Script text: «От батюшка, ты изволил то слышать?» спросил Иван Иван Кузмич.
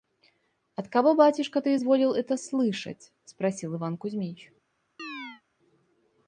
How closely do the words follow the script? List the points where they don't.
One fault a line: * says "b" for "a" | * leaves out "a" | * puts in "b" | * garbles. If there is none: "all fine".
* puts in "кого"
* says "это" for "то"
* leaves out "Иван"